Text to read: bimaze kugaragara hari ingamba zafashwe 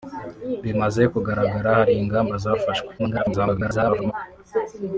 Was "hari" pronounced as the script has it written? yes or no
yes